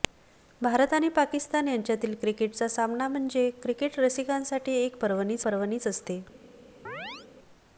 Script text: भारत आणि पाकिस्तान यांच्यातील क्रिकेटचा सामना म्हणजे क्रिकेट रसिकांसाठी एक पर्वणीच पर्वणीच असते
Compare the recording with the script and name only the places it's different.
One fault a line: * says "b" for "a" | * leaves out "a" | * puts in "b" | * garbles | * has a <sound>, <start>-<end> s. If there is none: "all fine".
* has a chirp, 6.9-7.3 s